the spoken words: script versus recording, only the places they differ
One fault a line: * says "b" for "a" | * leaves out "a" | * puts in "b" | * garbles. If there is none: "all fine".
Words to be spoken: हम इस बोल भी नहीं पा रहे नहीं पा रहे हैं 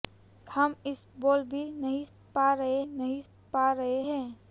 all fine